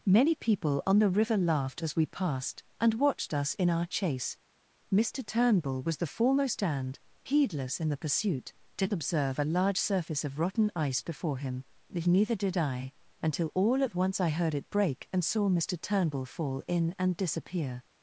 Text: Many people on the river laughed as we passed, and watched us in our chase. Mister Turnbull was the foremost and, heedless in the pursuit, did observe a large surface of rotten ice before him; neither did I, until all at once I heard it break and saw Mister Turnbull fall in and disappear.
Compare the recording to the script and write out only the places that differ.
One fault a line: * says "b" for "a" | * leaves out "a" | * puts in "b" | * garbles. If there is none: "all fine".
all fine